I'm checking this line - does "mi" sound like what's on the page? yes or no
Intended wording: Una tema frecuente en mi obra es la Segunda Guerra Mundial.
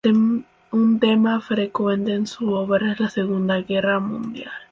no